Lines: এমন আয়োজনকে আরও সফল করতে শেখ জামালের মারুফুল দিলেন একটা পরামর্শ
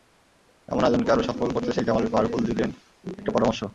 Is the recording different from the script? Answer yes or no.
no